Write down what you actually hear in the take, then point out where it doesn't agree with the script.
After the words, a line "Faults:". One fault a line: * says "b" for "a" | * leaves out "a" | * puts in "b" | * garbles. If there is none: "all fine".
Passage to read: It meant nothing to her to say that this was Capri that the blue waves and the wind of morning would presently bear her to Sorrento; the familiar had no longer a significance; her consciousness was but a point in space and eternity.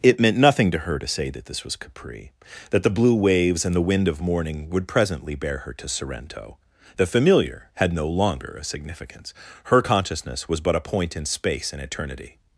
It meant nothing to her to say that this was Capri that the blue waves and the wind of morning would presently bear her to Sorrento; the familiar had no longer a significance; her consciousness was but a point in space and eternity.
Faults:
all fine